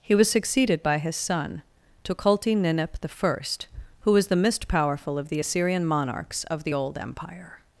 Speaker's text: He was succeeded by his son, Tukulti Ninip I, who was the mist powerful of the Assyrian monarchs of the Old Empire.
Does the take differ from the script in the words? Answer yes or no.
no